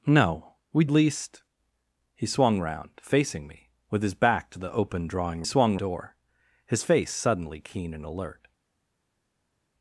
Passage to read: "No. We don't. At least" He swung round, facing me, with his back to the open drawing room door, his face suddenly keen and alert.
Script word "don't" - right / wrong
wrong